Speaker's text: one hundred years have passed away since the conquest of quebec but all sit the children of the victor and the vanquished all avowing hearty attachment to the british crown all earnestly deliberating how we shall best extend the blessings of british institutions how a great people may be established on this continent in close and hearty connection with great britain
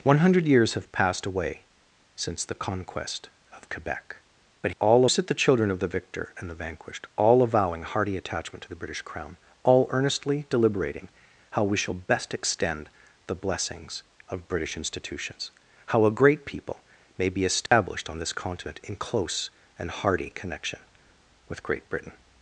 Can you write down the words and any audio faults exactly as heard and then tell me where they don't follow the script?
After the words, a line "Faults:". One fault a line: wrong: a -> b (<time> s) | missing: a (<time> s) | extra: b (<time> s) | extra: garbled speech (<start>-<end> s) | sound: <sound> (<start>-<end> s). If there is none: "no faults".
one hundred years have passed away since the conquest of quebec but all sit the children of the victor and the vanquished all avowing hearty attachment to the british crown all earnestly deliberating how we shall best extend the blessings of british institutions how a great people may be established on this continent in close and hearty connection with great britain
Faults:
sound: dropout (17.7-17.7 s)